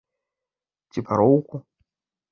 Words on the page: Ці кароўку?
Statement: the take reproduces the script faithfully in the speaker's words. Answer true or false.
true